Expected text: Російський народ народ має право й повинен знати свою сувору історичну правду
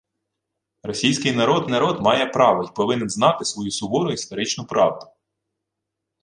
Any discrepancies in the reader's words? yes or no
no